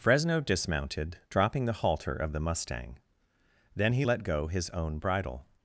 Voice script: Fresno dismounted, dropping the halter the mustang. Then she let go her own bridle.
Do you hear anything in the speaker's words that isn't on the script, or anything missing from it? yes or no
yes